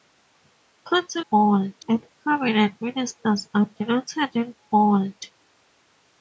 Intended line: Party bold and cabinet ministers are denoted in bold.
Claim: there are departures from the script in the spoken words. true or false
false